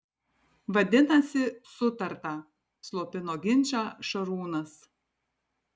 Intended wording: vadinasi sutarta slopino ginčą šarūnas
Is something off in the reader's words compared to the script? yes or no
no